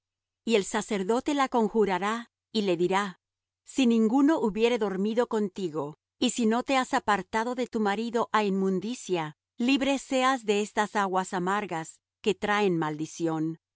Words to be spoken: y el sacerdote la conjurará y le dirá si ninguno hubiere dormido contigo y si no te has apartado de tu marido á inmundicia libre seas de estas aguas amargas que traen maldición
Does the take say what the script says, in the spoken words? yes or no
yes